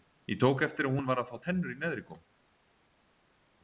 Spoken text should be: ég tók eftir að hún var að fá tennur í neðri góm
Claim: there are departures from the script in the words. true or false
false